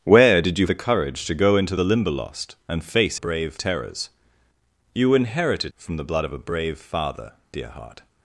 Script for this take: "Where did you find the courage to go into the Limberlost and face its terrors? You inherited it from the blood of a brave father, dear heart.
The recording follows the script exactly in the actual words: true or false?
false